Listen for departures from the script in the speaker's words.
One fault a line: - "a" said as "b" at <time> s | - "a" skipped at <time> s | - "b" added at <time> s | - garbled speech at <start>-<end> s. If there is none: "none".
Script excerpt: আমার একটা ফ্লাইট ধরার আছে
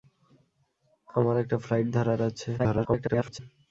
- garbled speech at 2.6-3.4 s